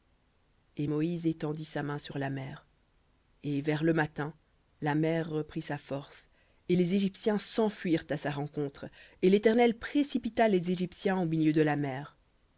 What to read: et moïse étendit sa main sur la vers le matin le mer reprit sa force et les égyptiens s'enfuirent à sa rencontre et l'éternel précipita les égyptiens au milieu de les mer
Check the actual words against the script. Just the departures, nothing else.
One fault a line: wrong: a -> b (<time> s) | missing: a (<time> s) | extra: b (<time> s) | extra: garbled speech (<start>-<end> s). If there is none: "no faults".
extra: mer et (2.3 s)
wrong: le -> la (4.8 s)
wrong: les -> la (11.6 s)